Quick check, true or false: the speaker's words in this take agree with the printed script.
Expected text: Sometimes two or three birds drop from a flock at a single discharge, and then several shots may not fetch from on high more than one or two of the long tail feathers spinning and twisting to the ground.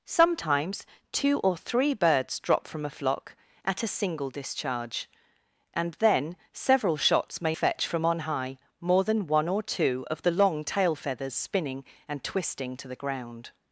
false